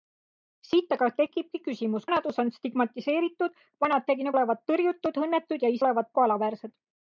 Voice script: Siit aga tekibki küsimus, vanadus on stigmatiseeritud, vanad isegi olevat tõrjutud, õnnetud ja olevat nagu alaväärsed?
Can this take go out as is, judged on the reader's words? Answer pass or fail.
pass